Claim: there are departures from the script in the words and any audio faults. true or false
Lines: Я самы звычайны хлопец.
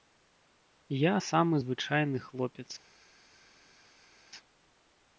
false